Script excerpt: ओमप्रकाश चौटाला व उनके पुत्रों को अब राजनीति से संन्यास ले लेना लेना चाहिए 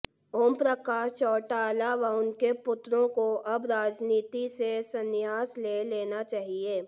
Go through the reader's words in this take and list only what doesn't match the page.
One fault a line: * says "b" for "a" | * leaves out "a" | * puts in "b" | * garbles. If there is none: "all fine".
* leaves out "लेना"